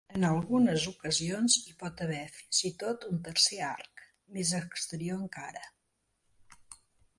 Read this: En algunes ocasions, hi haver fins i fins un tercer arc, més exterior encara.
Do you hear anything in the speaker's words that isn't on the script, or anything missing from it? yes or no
yes